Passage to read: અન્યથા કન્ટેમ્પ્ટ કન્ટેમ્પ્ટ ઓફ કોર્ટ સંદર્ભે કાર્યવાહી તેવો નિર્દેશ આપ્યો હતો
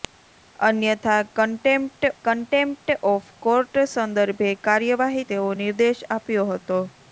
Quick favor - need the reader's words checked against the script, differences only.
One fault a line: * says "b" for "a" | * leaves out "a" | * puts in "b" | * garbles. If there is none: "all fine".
all fine